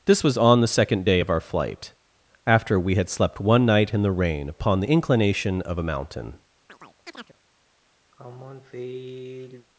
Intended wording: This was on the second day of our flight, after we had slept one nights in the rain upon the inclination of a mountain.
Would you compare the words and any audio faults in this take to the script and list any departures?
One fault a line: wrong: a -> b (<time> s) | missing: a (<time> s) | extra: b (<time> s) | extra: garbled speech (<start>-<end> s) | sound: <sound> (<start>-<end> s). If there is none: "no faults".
wrong: nights -> night (3.6 s)
sound: chirp (6.7-7.4 s)
sound: sigh (8.1-9.7 s)